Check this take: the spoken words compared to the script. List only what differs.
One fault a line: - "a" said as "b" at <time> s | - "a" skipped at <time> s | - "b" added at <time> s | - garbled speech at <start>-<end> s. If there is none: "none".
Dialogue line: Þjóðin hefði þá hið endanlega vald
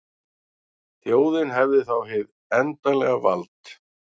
none